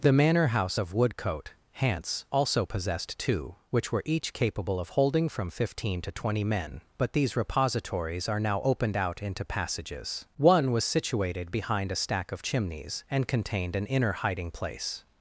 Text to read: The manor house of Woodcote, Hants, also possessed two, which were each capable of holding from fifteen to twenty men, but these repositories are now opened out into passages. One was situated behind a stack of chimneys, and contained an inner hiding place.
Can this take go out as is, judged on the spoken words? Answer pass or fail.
pass